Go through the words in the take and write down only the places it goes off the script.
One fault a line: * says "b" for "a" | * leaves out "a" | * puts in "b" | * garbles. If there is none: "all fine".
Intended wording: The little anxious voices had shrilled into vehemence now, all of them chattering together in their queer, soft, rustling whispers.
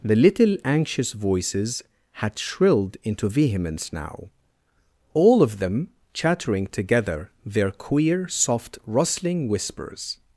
* leaves out "in"